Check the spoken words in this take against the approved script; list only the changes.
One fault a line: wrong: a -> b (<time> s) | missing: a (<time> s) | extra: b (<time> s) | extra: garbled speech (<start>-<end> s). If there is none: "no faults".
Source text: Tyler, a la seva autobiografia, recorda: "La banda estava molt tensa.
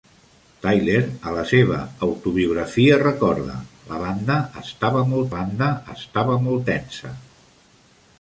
extra: banda estava molt (5.4 s)